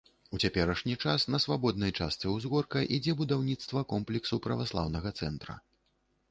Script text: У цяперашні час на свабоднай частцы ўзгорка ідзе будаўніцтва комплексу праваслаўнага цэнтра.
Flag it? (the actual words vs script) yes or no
no